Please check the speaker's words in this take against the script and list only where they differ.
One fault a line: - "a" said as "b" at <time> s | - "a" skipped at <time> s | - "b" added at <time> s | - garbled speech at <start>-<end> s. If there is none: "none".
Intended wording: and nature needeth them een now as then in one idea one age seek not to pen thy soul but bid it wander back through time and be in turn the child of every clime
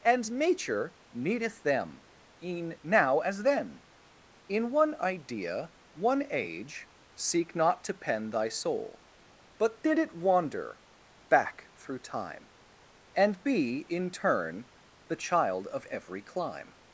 - "bid" said as "did" at 9.8 s